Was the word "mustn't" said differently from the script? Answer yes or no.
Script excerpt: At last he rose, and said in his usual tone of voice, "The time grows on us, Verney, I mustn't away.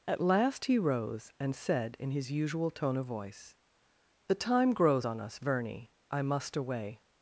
yes